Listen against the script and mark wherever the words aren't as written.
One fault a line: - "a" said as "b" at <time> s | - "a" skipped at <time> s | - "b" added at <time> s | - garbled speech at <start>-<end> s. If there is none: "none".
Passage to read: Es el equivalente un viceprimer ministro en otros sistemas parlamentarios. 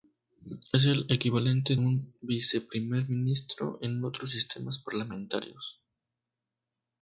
none